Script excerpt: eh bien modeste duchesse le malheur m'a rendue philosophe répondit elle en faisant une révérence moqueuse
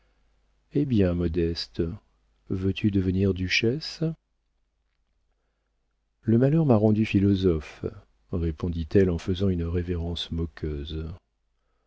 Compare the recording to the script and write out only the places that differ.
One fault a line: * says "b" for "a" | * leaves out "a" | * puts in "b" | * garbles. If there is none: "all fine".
* puts in "veux tu devenir"